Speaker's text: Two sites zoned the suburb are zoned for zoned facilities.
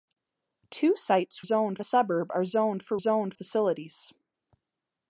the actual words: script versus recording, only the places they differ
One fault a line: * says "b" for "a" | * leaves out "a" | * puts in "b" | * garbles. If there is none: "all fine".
all fine